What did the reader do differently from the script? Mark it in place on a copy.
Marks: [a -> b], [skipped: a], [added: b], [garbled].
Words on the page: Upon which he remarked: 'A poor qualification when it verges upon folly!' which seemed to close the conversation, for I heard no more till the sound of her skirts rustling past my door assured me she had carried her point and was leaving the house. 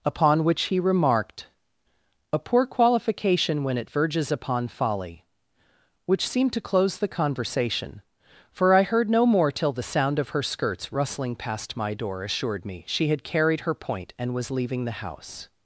Upon which he remarked: 'A poor qualification when it verges upon folly!' which seemed to close the conversation, for I heard no more till the sound of her skirts rustling past my door assured me she had carried her point and was leaving the house.